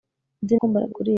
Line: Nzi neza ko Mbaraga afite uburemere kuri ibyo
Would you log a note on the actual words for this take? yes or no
yes